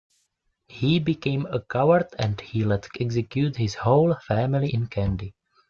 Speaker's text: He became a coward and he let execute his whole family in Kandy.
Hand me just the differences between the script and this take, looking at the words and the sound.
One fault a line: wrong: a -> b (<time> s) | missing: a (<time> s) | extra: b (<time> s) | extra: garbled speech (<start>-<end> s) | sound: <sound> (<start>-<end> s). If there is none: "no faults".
no faults